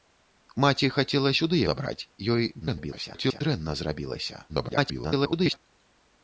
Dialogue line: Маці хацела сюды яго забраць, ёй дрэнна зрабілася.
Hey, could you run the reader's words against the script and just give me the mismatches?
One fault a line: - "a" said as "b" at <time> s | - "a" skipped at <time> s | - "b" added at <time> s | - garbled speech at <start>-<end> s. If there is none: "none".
- "яго" skipped at 1.6 s
- garbled speech at 2.6-3.4 s
- garbled speech at 4.5-5.6 s